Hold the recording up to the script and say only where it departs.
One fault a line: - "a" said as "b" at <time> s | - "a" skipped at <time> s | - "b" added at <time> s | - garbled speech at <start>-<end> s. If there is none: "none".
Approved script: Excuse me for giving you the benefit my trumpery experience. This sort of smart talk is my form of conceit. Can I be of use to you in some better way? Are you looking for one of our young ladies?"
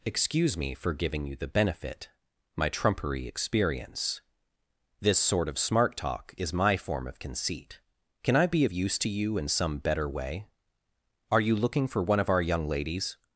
none